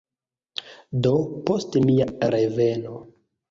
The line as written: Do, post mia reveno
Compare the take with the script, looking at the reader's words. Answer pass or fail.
pass